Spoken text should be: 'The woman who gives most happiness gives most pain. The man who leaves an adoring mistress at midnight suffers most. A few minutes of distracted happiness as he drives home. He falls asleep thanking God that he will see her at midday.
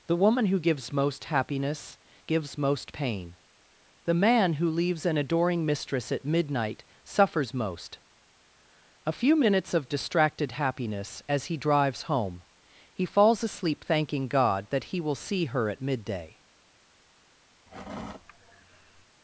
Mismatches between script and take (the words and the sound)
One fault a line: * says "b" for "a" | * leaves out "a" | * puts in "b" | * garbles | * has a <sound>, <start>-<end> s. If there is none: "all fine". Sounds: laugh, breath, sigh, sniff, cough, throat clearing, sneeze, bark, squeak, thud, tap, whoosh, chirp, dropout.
* has a sigh, 17.7-19.1 s